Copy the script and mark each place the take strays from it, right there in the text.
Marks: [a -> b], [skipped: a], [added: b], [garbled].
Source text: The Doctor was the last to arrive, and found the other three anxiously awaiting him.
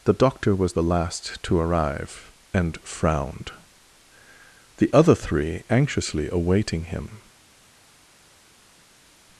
The Doctor was the last to arrive, and [found -> frowned] the other three anxiously awaiting him.